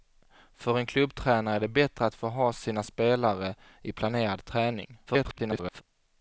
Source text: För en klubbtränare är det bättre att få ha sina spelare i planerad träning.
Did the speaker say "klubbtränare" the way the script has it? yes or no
yes